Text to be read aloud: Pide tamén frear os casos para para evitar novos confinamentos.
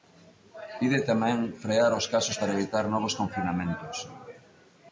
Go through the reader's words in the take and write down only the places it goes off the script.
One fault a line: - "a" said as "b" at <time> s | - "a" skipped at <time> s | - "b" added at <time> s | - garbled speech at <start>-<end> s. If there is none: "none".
- "para" skipped at 2.5 s